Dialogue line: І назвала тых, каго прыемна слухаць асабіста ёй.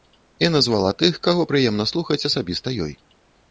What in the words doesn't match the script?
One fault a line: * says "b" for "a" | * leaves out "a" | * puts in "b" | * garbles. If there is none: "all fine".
all fine